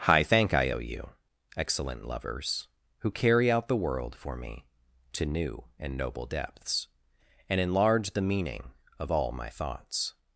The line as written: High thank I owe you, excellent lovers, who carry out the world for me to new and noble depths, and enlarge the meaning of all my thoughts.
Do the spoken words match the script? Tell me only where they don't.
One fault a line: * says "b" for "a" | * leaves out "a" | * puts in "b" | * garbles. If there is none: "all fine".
all fine